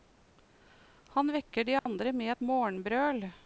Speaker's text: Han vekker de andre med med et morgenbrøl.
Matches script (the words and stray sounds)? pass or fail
fail